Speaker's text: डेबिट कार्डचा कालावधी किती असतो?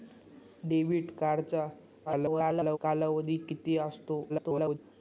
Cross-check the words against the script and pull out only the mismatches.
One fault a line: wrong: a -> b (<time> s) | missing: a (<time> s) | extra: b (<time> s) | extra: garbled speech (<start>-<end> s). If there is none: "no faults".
extra: garbled speech (2.1-2.8 s)
extra: garbled speech (4.3-4.8 s)